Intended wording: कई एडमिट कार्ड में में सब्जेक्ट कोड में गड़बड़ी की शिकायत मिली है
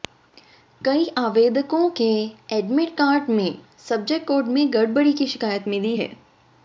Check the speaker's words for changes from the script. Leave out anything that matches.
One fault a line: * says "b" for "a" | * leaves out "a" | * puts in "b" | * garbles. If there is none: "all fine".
* puts in "आवेदकों के"
* leaves out "में"